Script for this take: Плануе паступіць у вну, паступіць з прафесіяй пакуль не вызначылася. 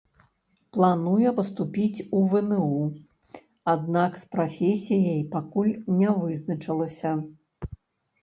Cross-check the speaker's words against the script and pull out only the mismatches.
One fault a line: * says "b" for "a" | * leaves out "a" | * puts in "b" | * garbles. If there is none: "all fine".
* says "аднак" for "паступіць"